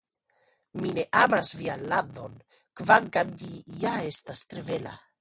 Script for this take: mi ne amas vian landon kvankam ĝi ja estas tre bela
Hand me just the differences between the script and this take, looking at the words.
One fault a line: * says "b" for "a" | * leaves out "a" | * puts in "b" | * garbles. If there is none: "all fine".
all fine